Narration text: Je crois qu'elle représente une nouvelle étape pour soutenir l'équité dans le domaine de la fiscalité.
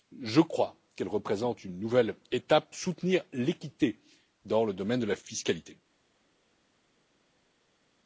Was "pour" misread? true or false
true